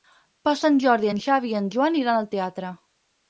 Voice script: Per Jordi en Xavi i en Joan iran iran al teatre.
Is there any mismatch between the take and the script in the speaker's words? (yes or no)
yes